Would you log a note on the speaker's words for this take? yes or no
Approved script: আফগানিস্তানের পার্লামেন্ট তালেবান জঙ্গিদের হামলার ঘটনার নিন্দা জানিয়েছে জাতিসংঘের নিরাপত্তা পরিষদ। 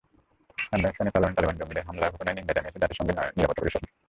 no